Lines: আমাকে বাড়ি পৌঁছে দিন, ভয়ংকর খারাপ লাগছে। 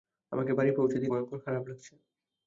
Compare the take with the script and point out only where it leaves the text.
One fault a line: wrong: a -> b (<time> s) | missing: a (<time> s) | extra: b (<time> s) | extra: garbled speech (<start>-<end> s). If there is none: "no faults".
no faults